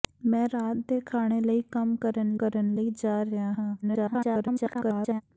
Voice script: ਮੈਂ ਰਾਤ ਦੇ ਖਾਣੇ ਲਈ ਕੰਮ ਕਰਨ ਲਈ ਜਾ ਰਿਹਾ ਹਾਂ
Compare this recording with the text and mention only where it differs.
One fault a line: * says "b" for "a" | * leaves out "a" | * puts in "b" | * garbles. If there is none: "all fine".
* puts in "ਕਰਨ"
* garbles